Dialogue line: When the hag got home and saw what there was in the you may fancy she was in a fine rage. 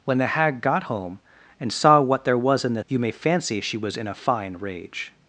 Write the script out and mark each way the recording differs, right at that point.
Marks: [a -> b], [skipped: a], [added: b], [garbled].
When the hag got home and saw what there was in the you may fancy she was in a fine rage.